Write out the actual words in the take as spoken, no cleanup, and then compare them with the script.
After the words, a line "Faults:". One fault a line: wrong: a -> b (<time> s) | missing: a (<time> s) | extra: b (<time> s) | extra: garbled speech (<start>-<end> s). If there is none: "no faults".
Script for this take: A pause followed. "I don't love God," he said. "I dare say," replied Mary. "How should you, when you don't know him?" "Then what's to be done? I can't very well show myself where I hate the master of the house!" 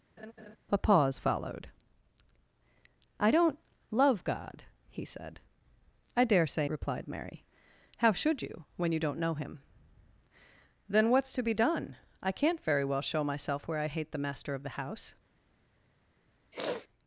A pause followed. "I don't love God," he said. "I dare say," replied Mary. "How should you, when you don't know him?" "Then what's to be done? I can't very well show myself where I hate the master of the house!"
Faults:
no faults